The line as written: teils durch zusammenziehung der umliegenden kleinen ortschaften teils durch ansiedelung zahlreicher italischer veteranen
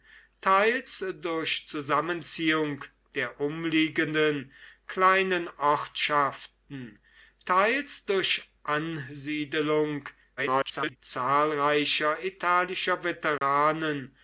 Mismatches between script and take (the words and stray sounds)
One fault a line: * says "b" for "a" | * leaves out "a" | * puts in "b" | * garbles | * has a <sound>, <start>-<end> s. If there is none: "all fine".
* garbles
* has a dropout, 13.4-13.4 s